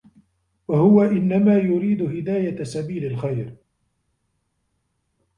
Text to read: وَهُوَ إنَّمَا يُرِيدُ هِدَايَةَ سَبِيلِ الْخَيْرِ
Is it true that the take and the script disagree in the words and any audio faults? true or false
false